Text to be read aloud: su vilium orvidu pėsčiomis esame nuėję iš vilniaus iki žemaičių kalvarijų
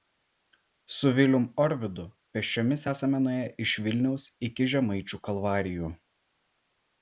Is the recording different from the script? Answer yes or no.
no